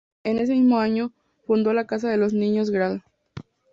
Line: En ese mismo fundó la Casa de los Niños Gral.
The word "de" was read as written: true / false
true